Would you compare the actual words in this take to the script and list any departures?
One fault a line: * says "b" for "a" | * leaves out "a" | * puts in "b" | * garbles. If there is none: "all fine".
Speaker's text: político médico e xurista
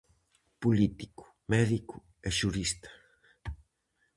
all fine